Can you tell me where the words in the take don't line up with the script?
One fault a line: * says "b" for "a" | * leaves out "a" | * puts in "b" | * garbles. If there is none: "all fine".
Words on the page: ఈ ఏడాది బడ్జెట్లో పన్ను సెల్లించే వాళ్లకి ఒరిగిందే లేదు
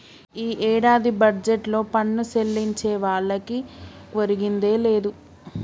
all fine